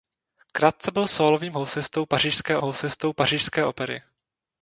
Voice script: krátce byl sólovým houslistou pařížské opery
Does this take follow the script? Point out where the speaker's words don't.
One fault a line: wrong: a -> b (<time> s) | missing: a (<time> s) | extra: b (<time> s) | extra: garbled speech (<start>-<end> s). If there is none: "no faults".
extra: houslistou pařížské (2.6 s)